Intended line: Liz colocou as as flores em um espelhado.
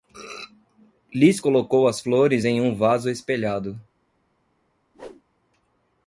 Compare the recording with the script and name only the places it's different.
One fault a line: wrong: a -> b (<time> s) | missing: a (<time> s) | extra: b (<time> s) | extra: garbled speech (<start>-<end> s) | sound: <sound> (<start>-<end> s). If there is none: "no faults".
missing: as (2.0 s)
extra: vaso (2.7 s)
sound: whoosh (4.9-5.2 s)